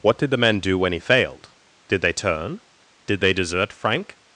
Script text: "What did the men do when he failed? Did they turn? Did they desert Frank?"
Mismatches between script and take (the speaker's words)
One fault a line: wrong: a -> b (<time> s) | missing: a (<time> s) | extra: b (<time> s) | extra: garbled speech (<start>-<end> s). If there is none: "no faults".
no faults